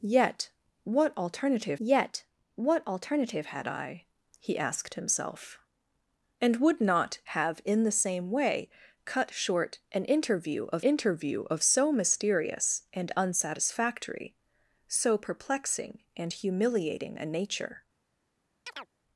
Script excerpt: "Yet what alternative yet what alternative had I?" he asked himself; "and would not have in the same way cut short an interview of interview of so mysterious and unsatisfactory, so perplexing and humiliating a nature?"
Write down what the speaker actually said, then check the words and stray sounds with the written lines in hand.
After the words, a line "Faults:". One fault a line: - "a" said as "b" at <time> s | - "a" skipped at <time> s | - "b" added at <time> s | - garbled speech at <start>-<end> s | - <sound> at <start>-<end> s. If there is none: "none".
"Yet what alternative yet what alternative had I?" he asked himself; "and would not have in the same way cut short an interview of interview of so mysterious and unsatisfactory, so perplexing and humiliating a nature?"
Faults:
- chirp at 18.7-18.9 s